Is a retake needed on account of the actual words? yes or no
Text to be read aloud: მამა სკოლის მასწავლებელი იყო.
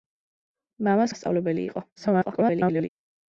yes